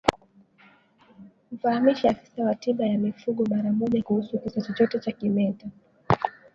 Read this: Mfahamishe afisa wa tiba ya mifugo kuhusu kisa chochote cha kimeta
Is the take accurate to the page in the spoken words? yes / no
no